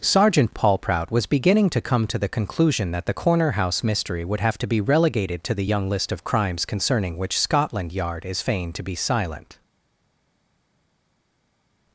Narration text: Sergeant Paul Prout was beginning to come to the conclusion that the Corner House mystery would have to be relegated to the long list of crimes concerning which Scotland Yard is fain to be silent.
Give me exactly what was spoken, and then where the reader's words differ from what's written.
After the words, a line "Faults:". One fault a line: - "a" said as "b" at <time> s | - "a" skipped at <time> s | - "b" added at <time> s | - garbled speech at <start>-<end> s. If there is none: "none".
Sergeant Paul Prout was beginning to come to the conclusion that the Corner House mystery would have to be relegated to the young list of crimes concerning which Scotland Yard is fain to be silent.
Faults:
- "long" said as "young" at 5.6 s